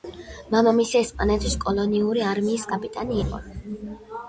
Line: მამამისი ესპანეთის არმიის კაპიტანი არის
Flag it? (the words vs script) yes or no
yes